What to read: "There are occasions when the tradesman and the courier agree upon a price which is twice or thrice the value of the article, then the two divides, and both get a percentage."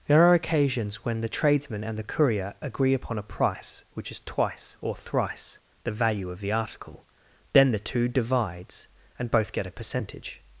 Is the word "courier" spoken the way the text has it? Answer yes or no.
yes